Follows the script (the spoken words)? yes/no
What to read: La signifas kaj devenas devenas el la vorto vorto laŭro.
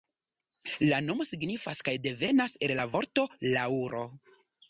no